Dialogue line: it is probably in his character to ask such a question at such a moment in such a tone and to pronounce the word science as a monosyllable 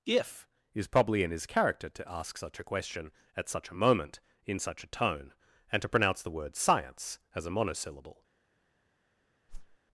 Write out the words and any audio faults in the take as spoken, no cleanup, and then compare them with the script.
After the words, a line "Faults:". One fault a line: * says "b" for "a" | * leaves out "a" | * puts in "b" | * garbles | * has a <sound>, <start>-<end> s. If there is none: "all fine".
if is probably in his character to ask such a question at such a moment in such a tone and to pronounce the word science as a monosyllable
Faults:
* says "if" for "it"
* has a whoosh, 9.5-9.8 s